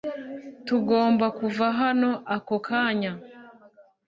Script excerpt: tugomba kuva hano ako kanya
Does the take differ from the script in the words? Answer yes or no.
no